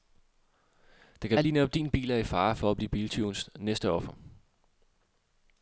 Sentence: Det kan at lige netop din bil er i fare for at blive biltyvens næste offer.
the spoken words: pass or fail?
pass